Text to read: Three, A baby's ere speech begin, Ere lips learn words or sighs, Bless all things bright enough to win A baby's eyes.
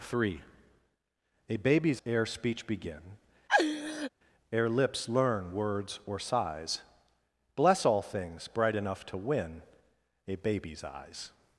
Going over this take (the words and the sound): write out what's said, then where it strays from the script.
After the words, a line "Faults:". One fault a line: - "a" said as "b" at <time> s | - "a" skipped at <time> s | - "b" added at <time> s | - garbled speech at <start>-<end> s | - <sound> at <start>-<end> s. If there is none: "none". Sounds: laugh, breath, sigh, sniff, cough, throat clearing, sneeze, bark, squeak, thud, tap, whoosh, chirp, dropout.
Three, A baby's ere speech begin, Ere lips learn words or sighs, Bless all things bright enough to win A baby's eyes.
Faults:
- laugh at 3.5-4.1 s